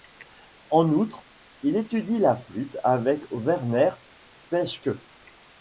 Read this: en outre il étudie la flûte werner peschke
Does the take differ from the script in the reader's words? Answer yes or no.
yes